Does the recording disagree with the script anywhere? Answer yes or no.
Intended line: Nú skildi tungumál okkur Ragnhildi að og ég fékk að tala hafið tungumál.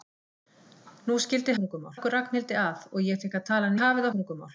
no